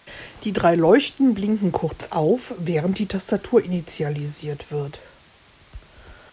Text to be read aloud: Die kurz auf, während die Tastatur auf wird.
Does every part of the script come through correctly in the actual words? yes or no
no